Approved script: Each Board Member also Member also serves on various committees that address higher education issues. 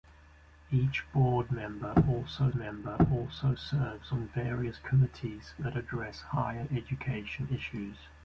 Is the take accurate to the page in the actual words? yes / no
yes